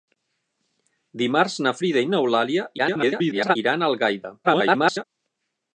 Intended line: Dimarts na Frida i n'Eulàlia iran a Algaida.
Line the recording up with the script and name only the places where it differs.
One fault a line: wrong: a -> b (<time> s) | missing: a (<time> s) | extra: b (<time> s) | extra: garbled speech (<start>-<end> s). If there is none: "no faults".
extra: garbled speech (2.8-3.6 s)
extra: garbled speech (4.4-5.0 s)